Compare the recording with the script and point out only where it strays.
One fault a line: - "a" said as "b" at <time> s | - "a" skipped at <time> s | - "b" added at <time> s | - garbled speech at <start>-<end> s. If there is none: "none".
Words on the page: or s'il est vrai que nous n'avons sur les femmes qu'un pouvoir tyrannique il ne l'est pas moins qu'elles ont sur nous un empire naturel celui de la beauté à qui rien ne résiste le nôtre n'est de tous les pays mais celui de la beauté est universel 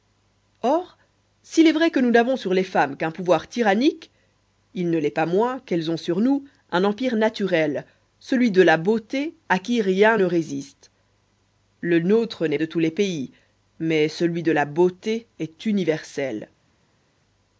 none